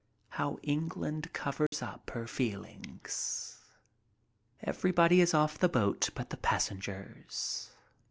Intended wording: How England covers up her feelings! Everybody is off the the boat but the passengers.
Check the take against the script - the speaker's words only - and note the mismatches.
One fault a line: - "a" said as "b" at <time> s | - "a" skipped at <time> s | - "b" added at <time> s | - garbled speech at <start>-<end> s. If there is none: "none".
- "the" skipped at 5.7 s